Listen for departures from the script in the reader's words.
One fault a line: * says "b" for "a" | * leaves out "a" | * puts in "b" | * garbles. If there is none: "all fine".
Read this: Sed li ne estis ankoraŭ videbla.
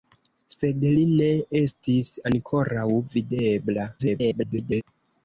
* garbles